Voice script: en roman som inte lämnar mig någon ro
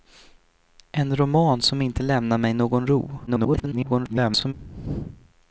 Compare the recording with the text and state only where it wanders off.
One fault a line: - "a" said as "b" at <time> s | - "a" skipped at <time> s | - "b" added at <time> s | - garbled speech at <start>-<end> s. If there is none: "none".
- garbled speech at 3.3-4.5 s